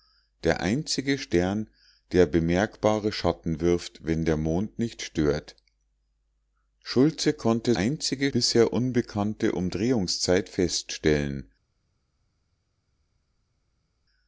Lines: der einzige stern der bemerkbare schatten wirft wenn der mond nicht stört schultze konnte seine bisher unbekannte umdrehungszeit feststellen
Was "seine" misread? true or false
true